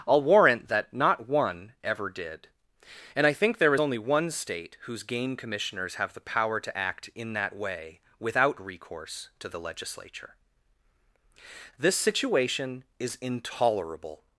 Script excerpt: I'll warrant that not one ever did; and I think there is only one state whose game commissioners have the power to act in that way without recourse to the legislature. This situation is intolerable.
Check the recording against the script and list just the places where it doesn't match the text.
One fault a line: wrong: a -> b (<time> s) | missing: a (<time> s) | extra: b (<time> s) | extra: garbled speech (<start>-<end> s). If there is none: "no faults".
no faults